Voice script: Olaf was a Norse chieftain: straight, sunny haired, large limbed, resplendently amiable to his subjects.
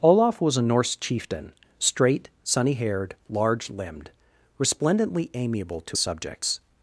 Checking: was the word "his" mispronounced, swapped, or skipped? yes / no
yes